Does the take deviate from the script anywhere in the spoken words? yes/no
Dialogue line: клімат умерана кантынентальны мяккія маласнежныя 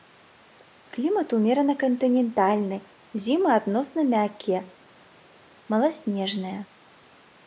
yes